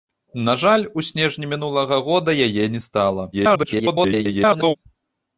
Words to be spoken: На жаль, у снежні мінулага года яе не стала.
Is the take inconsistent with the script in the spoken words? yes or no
yes